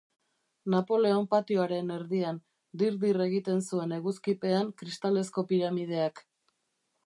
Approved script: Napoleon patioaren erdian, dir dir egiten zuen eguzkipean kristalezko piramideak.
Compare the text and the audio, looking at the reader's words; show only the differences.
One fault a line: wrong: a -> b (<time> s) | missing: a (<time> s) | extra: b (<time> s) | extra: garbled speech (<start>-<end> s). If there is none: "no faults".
no faults